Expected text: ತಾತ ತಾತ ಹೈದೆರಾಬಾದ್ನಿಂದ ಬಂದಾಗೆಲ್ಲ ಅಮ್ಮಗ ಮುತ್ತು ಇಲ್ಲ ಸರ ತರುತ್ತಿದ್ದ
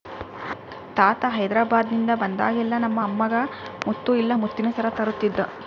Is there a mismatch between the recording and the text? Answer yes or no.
yes